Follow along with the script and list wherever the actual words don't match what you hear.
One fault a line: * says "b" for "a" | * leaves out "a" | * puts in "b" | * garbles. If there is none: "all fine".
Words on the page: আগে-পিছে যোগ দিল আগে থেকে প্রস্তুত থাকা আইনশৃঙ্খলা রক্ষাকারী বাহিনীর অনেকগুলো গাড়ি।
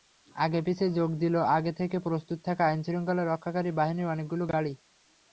all fine